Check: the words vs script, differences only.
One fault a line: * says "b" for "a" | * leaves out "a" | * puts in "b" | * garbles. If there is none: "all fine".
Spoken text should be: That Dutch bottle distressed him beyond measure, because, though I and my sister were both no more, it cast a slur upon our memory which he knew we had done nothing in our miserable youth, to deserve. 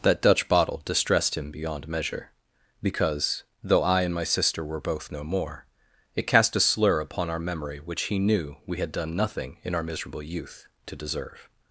all fine